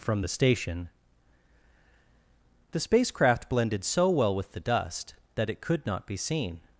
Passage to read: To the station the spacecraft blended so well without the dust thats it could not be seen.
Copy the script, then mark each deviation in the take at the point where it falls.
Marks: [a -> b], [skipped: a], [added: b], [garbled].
[To -> From] the station the spacecraft blended so well [without -> with] the dust [thats -> that] it could not be seen.